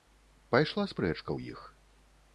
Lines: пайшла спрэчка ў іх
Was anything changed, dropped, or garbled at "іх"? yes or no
no